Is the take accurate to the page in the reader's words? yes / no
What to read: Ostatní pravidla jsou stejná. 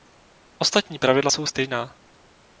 yes